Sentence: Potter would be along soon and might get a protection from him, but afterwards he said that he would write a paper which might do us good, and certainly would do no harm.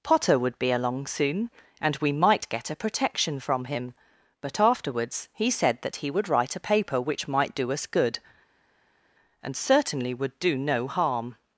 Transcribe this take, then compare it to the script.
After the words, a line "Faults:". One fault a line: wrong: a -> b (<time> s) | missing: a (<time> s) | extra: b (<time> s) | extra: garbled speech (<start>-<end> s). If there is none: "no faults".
Potter would be along soon and we might get a protection from him, but afterwards he said that he would write a paper which might do us good, and certainly would do no harm.
Faults:
extra: we (2.0 s)